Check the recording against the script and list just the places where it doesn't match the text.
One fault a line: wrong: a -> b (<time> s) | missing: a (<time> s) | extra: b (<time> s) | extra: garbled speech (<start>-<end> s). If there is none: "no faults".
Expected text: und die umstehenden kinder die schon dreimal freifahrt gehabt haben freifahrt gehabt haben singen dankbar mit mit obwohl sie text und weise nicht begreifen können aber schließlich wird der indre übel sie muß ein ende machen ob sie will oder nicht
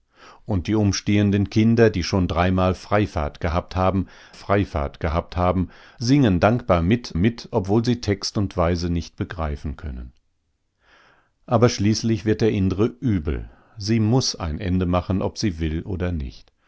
no faults